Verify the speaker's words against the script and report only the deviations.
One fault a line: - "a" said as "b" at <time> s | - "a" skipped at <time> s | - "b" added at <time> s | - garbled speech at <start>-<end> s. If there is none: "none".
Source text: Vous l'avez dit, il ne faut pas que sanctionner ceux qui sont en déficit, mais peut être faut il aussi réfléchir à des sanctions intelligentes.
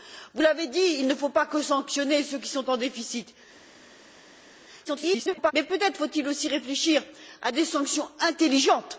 - garbled speech at 4.8-5.5 s